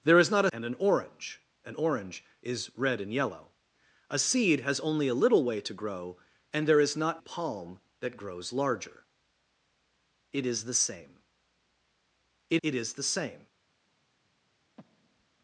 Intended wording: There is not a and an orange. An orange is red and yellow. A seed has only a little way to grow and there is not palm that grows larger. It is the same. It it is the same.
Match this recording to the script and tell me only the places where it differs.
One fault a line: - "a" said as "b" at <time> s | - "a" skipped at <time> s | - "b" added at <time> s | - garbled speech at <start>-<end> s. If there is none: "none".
none